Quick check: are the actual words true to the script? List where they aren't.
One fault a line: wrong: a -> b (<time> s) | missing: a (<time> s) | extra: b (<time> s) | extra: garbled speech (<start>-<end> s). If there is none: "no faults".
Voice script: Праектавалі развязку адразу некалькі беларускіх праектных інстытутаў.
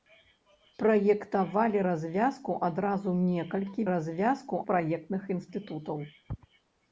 wrong: беларускіх -> развязку (3.9 s)